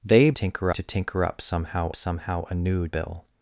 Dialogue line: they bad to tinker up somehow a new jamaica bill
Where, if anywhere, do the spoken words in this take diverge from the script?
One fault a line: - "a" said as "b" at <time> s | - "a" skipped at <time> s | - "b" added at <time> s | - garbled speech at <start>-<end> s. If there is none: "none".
- "bad" said as "tinker" at 0.3 s
- "somehow" added at 1.9 s
- "jamaica" skipped at 2.9 s